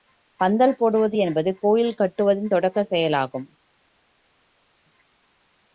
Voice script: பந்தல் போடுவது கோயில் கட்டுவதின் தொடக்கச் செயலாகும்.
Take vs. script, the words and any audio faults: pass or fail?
fail